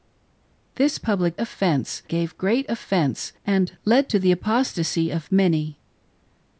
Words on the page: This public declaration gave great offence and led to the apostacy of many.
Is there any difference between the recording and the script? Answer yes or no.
yes